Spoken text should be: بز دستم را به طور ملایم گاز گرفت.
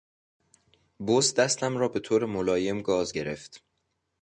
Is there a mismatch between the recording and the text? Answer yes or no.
no